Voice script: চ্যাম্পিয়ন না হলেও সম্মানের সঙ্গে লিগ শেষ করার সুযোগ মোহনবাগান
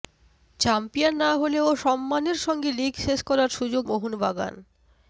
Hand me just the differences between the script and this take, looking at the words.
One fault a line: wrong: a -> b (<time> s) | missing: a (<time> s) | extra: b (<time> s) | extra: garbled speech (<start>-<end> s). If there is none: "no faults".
no faults